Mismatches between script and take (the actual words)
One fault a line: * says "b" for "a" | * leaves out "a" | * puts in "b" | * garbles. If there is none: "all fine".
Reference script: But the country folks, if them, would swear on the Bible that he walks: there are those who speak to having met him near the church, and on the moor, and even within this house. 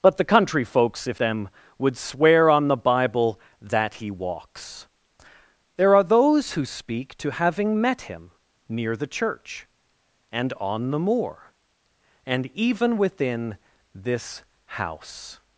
all fine